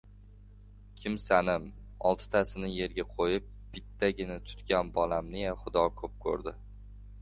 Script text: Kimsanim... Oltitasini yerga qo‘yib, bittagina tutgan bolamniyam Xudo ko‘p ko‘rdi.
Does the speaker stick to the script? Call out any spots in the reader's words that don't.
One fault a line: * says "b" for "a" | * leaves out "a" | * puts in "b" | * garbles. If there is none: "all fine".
all fine